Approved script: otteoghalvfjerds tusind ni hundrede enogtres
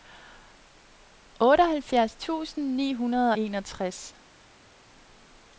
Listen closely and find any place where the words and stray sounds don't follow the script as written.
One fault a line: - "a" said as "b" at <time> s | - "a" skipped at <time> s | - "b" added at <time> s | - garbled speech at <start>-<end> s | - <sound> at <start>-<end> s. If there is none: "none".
none